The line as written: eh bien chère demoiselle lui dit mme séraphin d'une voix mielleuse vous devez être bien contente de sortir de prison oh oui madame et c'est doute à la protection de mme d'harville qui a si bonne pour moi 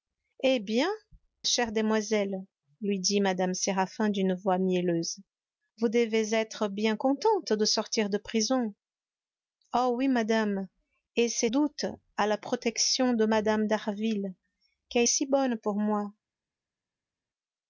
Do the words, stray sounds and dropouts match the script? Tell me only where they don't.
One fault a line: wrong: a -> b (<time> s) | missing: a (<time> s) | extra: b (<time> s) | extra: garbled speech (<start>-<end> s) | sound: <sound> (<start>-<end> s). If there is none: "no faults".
no faults